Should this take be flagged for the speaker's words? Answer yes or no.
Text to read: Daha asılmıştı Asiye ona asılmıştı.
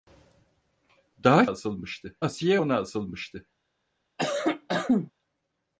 no